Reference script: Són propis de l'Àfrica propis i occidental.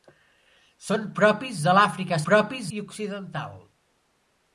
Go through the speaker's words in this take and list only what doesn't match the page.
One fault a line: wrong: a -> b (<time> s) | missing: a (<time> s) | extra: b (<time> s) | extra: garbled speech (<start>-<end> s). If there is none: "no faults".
no faults